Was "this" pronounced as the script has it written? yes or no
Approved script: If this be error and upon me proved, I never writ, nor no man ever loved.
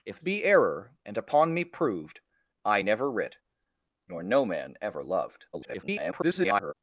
no